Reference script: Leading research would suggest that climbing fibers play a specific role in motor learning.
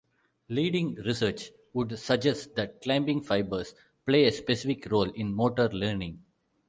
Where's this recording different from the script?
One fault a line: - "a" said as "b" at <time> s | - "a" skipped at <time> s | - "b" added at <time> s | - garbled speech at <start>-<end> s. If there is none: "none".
none